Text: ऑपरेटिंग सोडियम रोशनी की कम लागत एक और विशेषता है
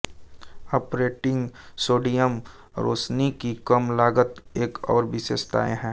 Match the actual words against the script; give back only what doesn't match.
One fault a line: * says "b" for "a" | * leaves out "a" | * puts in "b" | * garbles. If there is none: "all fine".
all fine